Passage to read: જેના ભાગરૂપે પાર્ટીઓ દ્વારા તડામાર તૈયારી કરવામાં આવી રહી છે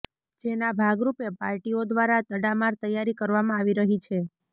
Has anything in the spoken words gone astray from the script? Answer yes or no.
no